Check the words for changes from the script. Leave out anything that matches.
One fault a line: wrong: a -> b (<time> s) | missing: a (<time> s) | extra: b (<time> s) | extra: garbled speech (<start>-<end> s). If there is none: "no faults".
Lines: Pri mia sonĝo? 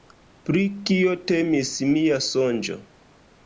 extra: kio temis (0.9 s)